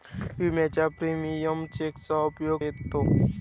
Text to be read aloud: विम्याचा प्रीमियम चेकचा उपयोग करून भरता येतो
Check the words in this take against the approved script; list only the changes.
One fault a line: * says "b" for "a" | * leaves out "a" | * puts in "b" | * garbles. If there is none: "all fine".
* leaves out "करून भरता"